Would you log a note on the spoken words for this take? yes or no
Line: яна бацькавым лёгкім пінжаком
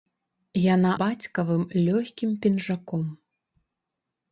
no